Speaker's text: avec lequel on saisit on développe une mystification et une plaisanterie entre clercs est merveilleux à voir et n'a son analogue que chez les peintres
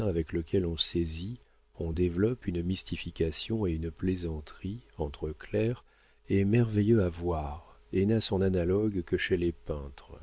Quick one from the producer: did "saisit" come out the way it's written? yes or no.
yes